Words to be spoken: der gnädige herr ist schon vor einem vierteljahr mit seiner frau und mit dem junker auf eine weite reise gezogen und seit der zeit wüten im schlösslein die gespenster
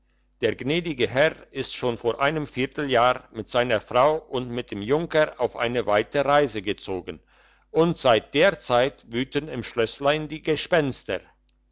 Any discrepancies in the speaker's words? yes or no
no